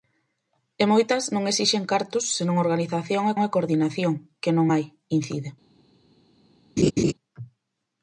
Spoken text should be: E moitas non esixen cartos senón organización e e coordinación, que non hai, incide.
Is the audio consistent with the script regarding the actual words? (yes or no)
yes